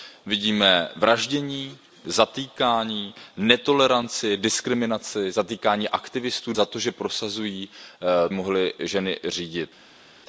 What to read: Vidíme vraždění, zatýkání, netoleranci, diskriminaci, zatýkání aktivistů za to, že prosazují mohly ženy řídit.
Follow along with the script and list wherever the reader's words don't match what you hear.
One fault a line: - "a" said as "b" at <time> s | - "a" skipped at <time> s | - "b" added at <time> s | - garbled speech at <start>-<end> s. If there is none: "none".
none